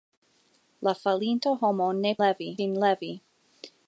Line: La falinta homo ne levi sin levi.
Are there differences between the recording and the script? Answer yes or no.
no